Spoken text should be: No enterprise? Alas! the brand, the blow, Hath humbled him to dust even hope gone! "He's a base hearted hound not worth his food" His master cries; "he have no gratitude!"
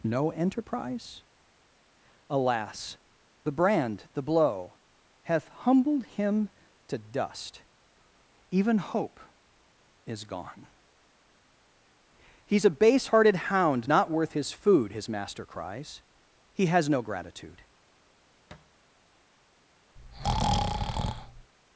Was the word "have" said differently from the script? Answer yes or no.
yes